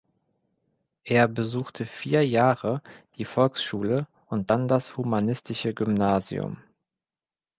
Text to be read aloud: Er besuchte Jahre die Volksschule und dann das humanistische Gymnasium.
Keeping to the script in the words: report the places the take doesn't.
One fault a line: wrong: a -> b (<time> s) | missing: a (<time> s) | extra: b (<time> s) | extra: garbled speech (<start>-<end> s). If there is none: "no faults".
extra: vier (1.9 s)